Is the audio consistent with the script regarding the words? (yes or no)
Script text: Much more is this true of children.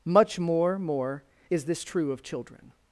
no